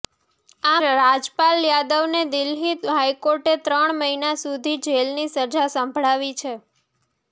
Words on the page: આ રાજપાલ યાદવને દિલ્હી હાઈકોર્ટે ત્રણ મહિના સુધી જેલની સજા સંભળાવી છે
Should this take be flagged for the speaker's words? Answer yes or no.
no